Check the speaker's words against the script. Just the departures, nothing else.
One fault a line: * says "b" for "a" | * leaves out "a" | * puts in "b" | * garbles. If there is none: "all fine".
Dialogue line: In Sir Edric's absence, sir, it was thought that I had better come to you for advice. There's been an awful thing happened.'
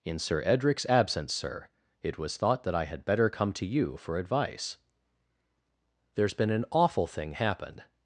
all fine